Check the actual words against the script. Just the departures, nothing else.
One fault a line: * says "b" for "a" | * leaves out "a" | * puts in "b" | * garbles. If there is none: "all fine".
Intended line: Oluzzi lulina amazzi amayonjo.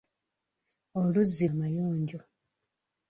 * leaves out "lulina amazzi"